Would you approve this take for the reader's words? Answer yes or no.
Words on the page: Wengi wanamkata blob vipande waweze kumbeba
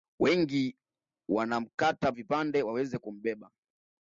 no